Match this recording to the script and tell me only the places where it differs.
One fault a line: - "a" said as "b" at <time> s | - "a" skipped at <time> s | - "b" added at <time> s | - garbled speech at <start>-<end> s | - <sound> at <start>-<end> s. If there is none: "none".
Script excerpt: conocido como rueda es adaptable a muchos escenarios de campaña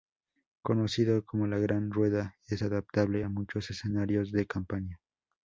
- "la gran" added at 1.4 s